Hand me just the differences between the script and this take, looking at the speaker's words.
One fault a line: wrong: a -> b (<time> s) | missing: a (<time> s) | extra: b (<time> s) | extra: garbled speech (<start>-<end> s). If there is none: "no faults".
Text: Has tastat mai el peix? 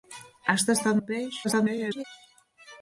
missing: mai (1.0 s)
extra: garbled speech (1.4-2.0 s)